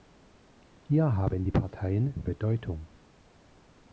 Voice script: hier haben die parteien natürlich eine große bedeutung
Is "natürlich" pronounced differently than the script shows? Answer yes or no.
yes